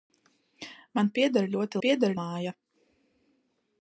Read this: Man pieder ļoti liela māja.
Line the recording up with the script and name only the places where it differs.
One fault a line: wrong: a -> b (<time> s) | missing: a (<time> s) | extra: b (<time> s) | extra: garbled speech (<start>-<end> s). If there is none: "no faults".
wrong: liela -> pieder (1.8 s)